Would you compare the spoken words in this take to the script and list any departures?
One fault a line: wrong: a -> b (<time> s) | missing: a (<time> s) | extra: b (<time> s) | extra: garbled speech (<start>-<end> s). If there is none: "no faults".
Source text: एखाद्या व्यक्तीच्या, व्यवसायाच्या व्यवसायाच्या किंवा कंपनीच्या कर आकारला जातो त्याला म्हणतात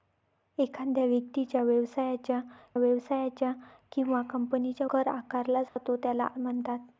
no faults